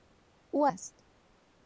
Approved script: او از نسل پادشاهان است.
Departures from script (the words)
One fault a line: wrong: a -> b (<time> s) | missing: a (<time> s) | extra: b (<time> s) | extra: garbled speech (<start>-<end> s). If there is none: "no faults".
missing: از نسل پادشاهان (0.7 s)